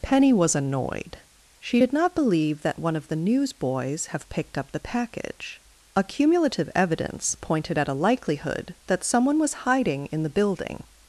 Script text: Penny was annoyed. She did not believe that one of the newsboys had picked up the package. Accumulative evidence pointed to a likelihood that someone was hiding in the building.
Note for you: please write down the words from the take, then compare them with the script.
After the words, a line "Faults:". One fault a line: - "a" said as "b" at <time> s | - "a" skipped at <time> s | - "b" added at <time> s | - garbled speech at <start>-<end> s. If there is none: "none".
Penny was annoyed. She did not believe that one of the newsboys have picked up the package. Accumulative evidence pointed at a likelihood that someone was hiding in the building.
Faults:
- "had" said as "have" at 4.1 s
- "to" said as "at" at 7.8 s